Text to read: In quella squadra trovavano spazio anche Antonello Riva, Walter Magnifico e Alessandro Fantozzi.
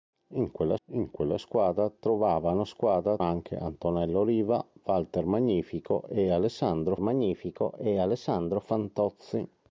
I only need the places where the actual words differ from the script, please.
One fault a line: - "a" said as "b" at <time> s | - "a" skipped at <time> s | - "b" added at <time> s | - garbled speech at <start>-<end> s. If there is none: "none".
- "in quella" added at 0.9 s
- "spazio" said as "squadra" at 2.7 s
- "Magnifico e Alessandro" added at 7.0 s